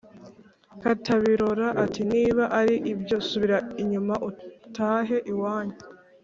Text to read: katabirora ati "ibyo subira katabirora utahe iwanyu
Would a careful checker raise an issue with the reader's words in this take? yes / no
yes